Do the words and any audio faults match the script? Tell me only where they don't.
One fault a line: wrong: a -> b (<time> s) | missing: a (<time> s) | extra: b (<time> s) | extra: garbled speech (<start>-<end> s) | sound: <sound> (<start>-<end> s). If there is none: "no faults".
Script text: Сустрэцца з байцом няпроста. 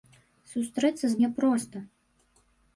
missing: байцом (1.2 s)